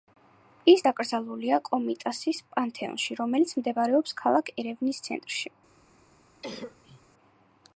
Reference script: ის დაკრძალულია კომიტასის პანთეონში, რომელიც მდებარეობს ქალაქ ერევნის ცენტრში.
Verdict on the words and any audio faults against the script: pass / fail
fail